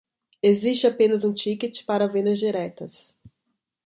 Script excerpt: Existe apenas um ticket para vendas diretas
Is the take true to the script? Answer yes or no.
yes